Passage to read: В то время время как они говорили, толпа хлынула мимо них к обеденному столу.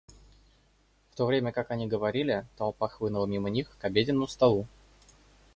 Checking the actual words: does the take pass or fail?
fail